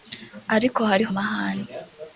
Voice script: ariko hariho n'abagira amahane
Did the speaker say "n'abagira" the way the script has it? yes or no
no